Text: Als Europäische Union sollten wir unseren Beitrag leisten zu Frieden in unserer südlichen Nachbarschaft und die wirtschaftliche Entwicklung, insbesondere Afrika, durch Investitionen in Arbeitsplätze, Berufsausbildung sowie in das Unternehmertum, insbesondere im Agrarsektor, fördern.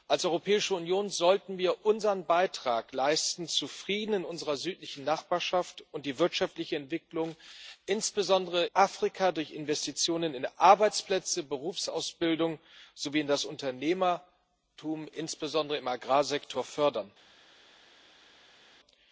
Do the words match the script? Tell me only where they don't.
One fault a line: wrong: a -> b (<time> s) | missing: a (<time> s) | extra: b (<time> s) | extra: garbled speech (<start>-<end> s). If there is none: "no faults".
no faults